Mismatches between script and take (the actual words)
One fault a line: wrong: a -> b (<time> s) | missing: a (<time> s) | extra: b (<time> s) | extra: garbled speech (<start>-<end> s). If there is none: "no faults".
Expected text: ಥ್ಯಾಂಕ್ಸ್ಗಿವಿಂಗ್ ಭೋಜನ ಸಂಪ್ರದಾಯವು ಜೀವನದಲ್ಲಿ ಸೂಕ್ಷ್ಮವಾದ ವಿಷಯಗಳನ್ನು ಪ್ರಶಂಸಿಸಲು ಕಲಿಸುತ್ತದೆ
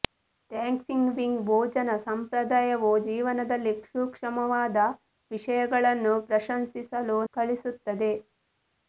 no faults